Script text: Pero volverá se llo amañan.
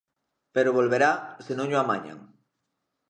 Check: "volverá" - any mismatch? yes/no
no